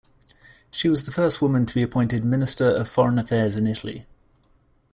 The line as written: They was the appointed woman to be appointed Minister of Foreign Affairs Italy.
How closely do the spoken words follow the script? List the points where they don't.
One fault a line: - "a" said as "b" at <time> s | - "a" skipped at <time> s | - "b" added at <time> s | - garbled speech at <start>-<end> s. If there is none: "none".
- "They" said as "She" at 0.7 s
- "appointed" said as "first" at 1.1 s
- "in" added at 3.6 s